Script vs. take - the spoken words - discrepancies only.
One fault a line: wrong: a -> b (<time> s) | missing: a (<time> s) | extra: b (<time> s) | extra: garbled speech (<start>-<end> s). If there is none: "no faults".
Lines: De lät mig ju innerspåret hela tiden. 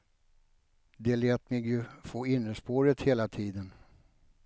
extra: få (2.0 s)